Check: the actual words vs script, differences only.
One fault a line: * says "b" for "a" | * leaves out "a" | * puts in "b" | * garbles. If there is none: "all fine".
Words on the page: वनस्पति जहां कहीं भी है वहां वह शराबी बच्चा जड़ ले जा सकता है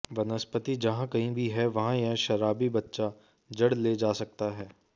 * says "यह" for "वह"